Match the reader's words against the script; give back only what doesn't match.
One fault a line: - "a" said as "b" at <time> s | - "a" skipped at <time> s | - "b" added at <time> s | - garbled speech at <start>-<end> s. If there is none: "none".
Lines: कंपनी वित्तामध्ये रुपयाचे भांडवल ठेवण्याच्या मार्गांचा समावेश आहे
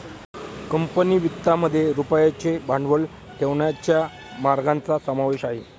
none